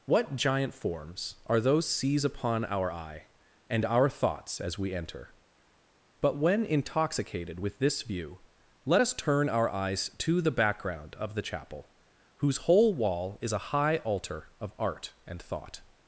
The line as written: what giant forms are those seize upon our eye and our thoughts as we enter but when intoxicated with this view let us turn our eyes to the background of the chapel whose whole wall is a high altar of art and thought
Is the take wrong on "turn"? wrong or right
right